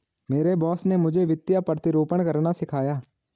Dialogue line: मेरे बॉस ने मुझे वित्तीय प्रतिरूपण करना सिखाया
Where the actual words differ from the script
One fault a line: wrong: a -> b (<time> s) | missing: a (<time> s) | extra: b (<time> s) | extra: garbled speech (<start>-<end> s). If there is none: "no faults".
no faults